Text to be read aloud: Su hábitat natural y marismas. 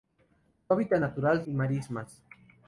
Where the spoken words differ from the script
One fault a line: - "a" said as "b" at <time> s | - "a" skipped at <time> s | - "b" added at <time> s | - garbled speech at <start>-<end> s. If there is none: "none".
none